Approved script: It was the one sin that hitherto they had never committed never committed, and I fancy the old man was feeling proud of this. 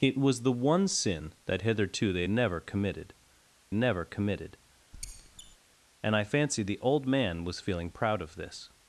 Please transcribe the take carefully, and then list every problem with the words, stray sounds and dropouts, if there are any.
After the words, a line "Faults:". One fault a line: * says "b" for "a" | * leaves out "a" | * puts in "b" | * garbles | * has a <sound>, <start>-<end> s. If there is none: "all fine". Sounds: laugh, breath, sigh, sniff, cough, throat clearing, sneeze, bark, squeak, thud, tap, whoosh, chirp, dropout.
It was the one sin that hitherto they had never committed never committed, and I fancy the old man was feeling proud of this.
Faults:
* has a squeak, 4.9-5.6 s